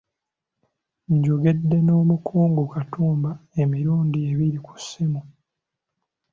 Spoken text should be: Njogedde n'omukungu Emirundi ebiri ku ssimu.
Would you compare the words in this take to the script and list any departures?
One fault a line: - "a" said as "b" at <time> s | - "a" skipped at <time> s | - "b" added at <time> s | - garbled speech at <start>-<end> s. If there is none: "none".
- "Katumba" added at 2.7 s